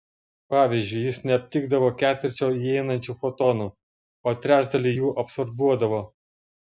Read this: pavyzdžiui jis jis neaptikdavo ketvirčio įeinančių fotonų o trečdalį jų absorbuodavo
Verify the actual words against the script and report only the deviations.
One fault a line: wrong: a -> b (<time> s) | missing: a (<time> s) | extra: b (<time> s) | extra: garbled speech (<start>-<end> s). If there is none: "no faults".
missing: jis (1.2 s)